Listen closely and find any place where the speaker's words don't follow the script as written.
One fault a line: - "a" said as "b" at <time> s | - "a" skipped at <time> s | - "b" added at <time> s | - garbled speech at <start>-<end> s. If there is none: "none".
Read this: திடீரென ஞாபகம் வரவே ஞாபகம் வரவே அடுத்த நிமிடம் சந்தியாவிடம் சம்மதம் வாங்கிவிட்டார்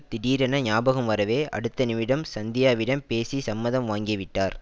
- "ஞாபகம் வரவே" skipped at 1.5 s
- "பேசி" added at 3.1 s